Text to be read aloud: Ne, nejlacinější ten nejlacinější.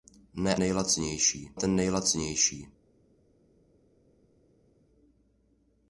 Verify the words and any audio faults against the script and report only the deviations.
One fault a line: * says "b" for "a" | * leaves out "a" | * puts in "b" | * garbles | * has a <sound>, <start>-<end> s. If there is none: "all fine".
all fine